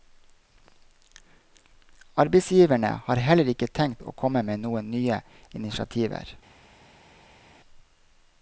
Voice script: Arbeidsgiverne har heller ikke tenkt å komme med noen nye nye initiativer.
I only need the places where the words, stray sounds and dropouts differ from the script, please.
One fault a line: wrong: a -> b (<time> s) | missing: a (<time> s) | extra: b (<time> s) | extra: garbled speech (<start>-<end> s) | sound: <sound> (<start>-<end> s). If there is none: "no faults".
missing: nye (5.2 s)